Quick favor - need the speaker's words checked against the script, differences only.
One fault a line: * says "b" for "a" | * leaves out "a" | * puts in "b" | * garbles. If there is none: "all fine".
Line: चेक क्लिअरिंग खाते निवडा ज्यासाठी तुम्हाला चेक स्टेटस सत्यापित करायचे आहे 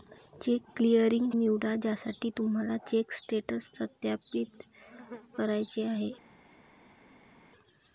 * leaves out "खाते"